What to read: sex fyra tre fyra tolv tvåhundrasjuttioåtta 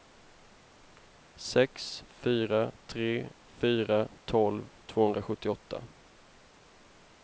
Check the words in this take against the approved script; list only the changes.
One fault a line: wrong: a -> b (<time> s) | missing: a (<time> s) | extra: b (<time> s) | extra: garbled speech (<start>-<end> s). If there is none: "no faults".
no faults